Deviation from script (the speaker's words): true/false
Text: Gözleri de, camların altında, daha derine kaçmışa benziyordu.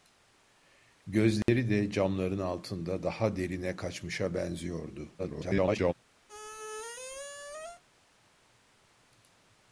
true